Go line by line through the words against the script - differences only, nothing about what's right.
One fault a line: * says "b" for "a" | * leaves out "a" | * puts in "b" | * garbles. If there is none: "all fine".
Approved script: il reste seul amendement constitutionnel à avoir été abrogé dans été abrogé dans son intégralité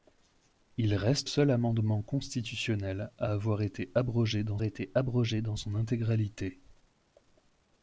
all fine